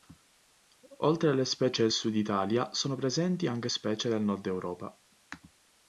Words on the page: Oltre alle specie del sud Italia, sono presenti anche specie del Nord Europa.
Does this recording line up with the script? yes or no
yes